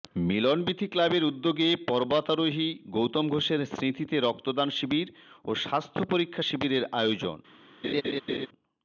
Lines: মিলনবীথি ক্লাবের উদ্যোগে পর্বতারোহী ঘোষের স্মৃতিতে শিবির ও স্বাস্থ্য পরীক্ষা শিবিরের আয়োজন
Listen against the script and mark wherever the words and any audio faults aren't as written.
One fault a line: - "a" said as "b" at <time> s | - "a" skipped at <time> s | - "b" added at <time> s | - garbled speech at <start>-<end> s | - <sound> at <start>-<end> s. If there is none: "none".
- "গৌতম" added at 2.9 s
- "রক্তদান" added at 4.2 s
- laugh at 7.8-8.5 s